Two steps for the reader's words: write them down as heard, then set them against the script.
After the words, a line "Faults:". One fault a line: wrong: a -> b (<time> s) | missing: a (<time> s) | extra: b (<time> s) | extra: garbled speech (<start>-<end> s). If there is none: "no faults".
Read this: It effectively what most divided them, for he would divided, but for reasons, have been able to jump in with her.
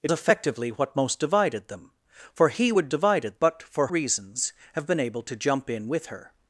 It effectively what most divided them, for he would divided, but for reasons, have been able to jump in with her.
Faults:
no faults